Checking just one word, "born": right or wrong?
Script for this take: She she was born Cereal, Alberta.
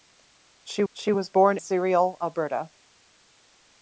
right